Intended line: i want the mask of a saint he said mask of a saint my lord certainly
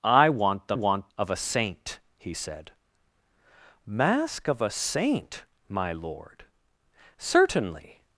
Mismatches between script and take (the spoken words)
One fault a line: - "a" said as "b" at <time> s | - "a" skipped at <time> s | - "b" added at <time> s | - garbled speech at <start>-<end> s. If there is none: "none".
- "mask" said as "want" at 0.7 s